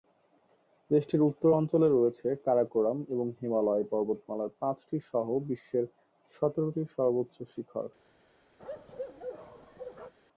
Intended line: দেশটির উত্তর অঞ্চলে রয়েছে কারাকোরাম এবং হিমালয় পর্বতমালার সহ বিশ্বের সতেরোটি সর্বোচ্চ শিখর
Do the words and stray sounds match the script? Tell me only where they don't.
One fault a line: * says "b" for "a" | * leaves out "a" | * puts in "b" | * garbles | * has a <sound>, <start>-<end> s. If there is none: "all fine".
* puts in "পাঁচটি"
* has a bark, 8.6-10.1 s